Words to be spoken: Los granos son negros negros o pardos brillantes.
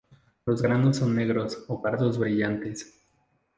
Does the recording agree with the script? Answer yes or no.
no